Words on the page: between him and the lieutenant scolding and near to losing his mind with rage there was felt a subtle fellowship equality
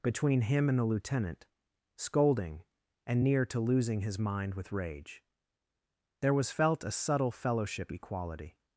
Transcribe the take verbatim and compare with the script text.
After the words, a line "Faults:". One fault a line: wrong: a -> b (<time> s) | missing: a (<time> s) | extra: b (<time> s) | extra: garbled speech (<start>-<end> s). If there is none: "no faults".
between him and the lieutenant scolding and near to losing his mind with rage there was felt a subtle fellowship equality
Faults:
no faults